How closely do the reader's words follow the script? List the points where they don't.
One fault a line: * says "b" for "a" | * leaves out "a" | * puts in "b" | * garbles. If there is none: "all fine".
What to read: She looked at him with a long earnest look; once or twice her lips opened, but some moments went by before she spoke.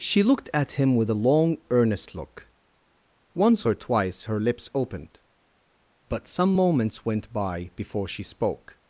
all fine